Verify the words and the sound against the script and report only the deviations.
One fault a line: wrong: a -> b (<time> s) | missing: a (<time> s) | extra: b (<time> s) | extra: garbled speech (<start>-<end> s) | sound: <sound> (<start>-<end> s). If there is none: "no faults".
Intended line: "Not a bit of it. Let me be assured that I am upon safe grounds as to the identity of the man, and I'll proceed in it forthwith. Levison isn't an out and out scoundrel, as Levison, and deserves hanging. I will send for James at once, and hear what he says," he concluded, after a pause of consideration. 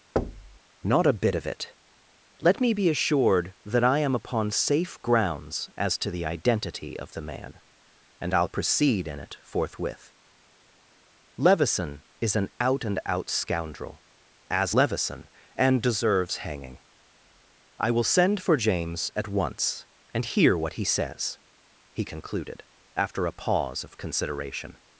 sound: thud (0.2-0.6 s)
wrong: isn't -> is (12.2 s)